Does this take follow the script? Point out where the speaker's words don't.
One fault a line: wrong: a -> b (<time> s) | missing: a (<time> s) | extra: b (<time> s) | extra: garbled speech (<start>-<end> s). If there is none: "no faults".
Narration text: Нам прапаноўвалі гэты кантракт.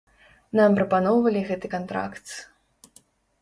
no faults